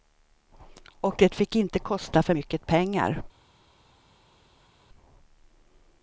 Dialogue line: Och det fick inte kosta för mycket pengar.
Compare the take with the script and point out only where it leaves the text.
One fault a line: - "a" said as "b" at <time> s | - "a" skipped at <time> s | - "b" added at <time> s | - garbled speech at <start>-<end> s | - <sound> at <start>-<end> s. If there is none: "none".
none